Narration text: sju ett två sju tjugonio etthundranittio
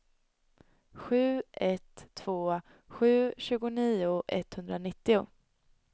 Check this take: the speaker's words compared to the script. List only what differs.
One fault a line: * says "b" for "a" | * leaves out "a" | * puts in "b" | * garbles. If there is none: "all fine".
all fine